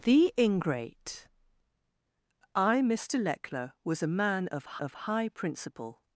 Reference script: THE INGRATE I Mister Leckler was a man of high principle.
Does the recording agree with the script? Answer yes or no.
no